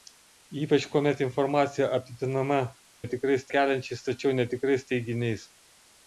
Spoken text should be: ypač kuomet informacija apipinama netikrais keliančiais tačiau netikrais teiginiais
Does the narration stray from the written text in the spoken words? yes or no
no